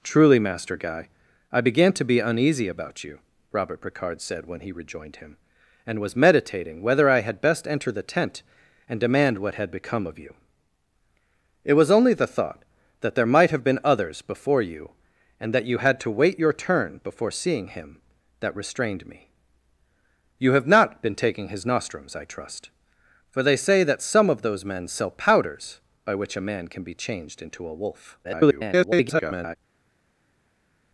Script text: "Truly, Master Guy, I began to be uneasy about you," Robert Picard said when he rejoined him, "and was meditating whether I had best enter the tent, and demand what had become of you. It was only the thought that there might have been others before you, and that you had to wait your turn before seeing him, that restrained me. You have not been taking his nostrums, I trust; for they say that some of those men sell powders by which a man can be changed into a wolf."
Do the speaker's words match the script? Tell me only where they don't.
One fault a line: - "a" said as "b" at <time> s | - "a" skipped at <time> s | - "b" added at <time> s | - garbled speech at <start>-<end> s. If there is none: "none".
- garbled speech at 28.2-29.6 s